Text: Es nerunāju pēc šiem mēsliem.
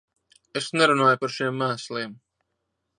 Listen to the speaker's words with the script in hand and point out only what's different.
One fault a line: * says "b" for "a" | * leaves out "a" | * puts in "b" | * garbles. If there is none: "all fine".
* says "par" for "pēc"